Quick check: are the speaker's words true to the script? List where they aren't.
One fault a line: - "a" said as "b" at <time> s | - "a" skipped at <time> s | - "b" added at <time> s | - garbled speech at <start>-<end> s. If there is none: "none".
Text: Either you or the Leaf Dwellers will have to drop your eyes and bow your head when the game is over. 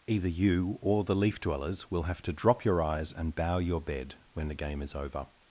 - "head" said as "bed" at 3.8 s